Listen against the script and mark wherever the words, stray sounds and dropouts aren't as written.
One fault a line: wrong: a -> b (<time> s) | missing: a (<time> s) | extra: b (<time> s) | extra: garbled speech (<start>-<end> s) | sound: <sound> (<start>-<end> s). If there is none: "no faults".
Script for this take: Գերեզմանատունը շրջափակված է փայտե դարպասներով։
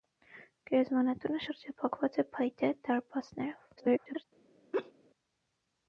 extra: garbled speech (3.8-4.2 s)
sound: laugh (4.7-4.9 s)